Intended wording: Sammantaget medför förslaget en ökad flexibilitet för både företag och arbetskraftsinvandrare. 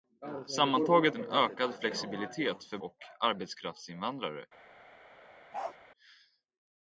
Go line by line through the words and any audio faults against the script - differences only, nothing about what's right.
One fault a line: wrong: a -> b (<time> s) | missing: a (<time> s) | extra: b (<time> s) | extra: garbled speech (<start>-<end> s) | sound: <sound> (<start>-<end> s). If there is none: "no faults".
missing: medför förslaget (1.1 s)
missing: både företag (2.8 s)
sound: bark (5.5-5.8 s)